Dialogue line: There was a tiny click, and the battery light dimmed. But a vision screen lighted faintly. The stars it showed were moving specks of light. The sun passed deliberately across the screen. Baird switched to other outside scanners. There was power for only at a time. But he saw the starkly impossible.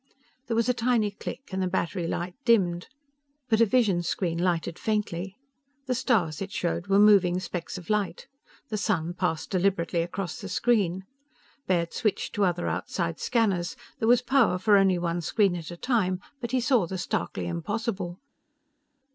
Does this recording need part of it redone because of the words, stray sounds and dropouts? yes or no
yes